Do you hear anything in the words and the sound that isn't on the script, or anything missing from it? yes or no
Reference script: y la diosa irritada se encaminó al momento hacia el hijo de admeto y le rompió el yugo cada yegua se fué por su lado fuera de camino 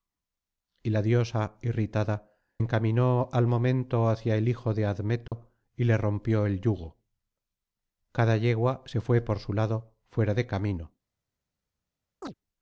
yes